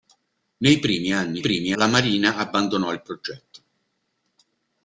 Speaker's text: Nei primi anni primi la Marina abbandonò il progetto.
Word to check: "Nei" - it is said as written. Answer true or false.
true